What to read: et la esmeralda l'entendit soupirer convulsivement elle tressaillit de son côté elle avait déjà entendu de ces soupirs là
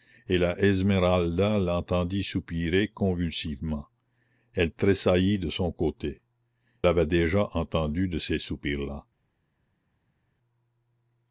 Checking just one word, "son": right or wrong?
right